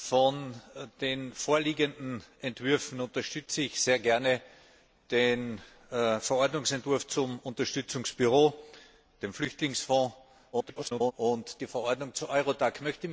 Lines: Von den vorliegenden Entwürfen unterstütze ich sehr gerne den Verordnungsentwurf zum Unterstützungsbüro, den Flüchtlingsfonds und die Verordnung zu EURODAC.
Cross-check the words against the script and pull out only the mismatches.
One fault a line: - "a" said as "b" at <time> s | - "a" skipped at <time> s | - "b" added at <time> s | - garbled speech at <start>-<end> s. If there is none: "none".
- garbled speech at 10.5-11.1 s